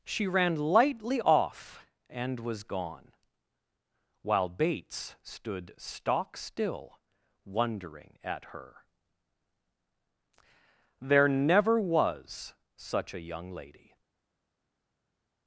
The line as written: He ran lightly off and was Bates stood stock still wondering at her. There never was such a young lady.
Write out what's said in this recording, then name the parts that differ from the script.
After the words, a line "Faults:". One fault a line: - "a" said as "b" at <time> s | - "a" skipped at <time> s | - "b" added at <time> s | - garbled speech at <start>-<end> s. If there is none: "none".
She ran lightly off and was gone, while Bates stood stock still wondering at her. There never was such a young lady.
Faults:
- "He" said as "She" at 0.0 s
- "gone while" added at 2.6 s